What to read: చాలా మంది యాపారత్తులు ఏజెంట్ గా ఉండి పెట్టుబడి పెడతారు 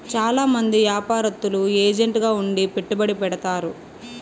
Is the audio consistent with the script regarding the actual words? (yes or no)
yes